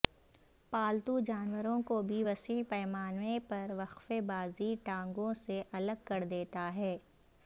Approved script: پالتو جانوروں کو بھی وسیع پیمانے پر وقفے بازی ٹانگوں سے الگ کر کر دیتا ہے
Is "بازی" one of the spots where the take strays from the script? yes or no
no